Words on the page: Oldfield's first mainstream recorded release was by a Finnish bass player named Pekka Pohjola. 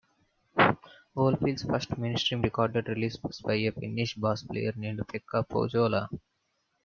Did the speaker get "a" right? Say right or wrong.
right